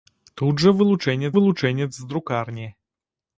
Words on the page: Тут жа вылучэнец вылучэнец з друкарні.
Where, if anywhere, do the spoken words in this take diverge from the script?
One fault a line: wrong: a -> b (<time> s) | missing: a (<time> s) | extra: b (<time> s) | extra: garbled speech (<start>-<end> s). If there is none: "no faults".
no faults